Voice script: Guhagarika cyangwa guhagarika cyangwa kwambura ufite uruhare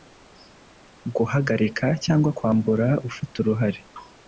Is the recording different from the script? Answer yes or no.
yes